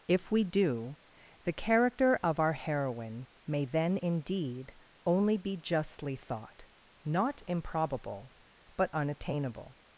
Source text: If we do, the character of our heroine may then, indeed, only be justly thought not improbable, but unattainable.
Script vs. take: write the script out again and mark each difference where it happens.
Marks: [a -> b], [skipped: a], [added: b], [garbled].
If we do, the character of our heroine may then, indeed, only be justly thought not improbable, but unattainable.